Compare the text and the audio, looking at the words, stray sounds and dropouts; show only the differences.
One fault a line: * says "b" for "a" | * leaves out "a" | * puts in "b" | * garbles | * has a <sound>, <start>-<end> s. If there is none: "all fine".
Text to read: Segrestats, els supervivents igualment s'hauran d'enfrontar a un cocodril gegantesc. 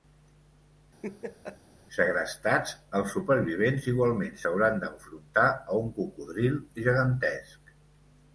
* has a laugh, 1.0-1.6 s